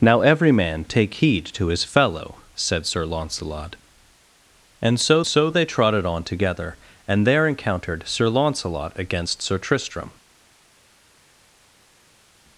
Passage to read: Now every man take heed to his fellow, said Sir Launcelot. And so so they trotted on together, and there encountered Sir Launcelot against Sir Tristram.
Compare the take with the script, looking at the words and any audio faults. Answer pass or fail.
pass